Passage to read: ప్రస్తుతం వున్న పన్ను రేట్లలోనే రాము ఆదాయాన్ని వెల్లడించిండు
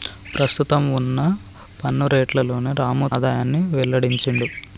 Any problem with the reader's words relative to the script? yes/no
no